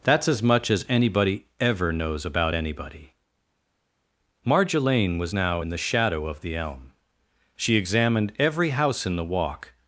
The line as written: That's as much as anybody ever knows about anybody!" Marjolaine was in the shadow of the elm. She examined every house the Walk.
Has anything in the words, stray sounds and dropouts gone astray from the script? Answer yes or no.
yes